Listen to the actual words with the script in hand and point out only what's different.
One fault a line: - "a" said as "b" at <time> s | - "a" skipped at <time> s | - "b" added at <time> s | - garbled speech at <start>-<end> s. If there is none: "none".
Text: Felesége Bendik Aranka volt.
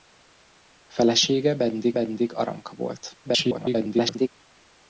- "Bendik" added at 1.9 s
- garbled speech at 3.2-4.3 s